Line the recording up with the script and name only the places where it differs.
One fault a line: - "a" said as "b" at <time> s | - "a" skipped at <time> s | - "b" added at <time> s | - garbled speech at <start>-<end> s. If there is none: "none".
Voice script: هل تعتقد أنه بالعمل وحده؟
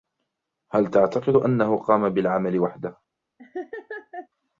- "قام" added at 1.8 s